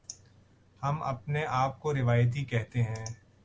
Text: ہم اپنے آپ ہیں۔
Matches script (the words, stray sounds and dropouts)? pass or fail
fail